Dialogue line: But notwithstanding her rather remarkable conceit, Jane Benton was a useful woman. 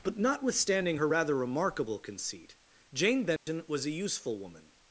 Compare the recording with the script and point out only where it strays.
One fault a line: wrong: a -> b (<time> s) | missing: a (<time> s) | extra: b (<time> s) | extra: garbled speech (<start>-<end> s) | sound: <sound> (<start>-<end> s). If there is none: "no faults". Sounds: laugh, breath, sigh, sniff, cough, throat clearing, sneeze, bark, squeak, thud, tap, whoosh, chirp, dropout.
sound: dropout (3.4-3.5 s)